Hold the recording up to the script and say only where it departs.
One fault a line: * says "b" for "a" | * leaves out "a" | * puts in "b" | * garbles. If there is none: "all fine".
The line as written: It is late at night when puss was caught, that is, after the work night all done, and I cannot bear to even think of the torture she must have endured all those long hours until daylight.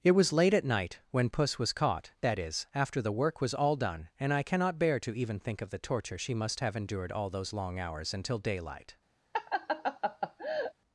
* says "was" for "is"
* says "was" for "night"